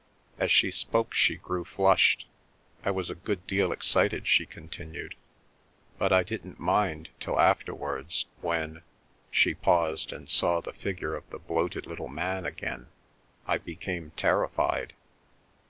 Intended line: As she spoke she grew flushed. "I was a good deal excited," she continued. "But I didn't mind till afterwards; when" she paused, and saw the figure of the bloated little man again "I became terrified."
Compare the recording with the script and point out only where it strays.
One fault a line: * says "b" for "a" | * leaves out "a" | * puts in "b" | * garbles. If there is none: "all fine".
all fine